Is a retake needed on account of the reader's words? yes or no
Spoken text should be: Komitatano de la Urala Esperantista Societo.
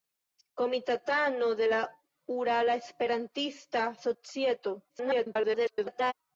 yes